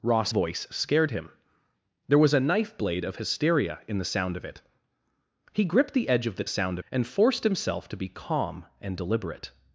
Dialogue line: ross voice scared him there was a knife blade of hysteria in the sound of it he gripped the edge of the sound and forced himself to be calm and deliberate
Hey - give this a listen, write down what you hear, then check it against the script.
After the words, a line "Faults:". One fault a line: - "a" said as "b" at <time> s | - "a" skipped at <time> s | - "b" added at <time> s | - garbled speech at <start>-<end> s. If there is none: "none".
ross voice scared him there was a knife blade of hysteria in the sound of it he gripped the edge of the sound and forced himself to be calm and deliberate
Faults:
none